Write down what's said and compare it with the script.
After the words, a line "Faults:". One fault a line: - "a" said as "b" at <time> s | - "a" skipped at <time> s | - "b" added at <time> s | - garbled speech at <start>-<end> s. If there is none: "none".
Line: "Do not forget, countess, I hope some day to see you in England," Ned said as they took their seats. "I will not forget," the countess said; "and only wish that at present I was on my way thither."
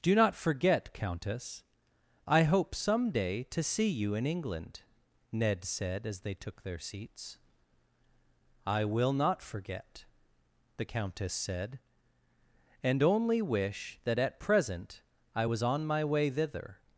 "Do not forget, countess, I hope some day to see you in England," Ned said as they took their seats. "I will not forget," the countess said; "and only wish that at present I was on my way thither."
Faults:
none